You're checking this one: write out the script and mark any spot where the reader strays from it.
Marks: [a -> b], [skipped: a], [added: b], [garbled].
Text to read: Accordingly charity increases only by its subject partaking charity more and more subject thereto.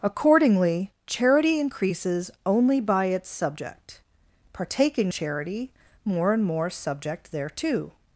Accordingly charity increases only by its subject partaking charity more and more subject thereto.